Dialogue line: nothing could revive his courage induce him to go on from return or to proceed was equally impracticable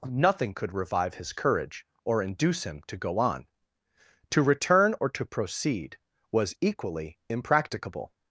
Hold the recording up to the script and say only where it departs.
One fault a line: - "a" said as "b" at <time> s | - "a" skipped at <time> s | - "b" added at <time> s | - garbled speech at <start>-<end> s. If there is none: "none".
- "or" added at 2.0 s
- "from" said as "to" at 4.3 s